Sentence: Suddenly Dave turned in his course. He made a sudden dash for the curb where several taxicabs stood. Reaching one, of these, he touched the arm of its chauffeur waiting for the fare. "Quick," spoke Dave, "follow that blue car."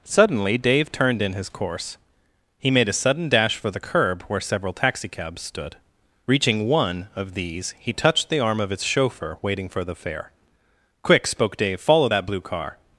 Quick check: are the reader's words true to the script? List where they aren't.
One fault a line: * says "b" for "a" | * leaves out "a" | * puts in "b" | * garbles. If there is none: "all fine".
all fine